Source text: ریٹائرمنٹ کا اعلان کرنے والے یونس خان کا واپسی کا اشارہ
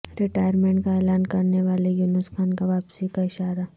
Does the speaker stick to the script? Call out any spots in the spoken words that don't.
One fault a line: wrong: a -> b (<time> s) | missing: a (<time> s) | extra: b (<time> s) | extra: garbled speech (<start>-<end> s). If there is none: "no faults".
no faults